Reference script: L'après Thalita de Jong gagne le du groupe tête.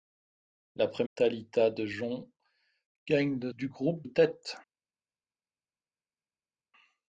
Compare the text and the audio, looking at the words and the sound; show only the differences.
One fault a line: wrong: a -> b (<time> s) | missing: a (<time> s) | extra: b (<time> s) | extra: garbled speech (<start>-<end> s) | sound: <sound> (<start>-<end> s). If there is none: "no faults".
no faults